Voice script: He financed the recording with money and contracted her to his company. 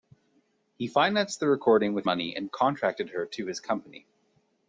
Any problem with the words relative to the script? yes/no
no